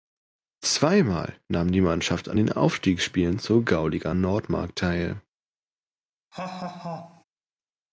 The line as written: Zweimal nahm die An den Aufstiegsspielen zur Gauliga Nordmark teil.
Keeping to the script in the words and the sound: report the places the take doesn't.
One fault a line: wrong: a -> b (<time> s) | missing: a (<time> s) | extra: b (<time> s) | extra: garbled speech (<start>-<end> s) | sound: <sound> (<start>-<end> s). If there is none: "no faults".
extra: Mannschaft (1.8 s)
sound: laugh (6.3-7.2 s)